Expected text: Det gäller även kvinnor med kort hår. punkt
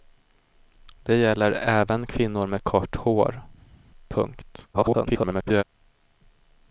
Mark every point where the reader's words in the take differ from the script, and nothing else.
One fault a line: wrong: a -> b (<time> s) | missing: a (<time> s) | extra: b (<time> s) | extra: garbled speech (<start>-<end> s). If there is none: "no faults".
extra: garbled speech (4.7-5.6 s)